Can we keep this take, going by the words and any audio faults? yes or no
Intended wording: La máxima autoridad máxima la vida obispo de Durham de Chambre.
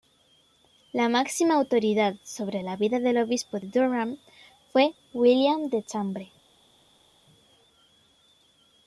no